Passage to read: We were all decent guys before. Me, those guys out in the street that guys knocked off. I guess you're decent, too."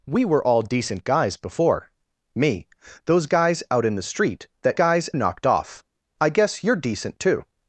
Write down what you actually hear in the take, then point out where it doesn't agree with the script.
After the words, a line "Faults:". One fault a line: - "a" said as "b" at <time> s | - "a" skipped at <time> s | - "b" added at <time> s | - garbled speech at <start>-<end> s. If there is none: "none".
We were all decent guys before. Me, those guys out in the street that guys knocked off. I guess you're decent, too."
Faults:
none